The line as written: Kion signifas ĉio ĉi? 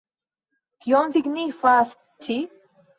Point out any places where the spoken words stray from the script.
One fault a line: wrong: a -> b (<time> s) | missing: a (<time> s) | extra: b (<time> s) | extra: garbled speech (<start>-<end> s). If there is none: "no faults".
missing: ĉio (1.9 s)